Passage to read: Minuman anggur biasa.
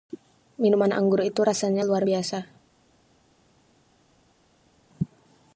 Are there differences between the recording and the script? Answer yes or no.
yes